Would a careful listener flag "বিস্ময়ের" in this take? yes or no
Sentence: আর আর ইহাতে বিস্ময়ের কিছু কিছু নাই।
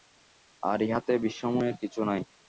no